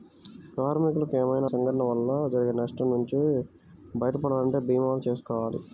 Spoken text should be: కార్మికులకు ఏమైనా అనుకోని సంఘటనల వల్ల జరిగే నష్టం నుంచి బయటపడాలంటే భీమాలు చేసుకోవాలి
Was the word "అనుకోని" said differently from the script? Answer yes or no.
yes